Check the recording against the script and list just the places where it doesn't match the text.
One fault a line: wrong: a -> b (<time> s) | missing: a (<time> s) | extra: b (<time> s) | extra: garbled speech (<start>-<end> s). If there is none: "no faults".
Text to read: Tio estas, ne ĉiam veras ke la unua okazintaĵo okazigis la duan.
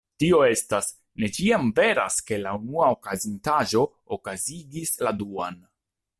no faults